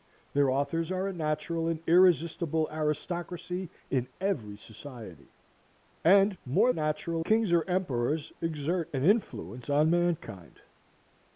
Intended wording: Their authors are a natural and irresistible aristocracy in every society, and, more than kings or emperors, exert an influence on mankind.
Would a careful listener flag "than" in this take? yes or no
yes